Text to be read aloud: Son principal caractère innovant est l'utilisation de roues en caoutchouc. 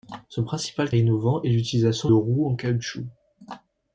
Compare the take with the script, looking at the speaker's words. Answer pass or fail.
fail